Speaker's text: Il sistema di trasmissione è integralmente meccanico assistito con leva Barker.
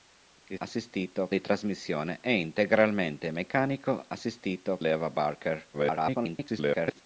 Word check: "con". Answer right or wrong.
wrong